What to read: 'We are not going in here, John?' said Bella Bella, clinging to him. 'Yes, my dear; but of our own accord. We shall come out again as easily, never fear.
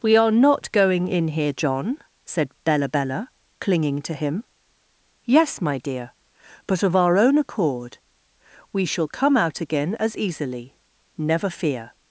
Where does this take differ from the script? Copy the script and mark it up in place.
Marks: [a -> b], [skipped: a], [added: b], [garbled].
'We are not going in here, John?' said Bella Bella, clinging to him. 'Yes, my dear; but of our own accord. We shall come out again as easily, never fear.